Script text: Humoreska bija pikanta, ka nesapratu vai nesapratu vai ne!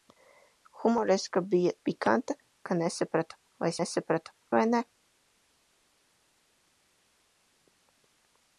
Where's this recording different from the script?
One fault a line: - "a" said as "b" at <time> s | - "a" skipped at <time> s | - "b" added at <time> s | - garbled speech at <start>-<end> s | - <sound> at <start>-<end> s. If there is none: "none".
none